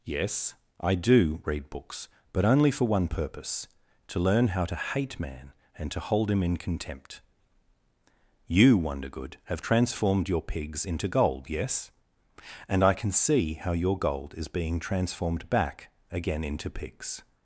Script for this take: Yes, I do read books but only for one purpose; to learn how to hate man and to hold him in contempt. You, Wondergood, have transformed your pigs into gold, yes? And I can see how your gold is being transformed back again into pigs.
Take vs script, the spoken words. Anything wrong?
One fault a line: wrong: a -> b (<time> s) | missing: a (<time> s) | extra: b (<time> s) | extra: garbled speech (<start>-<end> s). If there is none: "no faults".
no faults